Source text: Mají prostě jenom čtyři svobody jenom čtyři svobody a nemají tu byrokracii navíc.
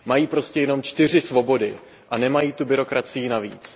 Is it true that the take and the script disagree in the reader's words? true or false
true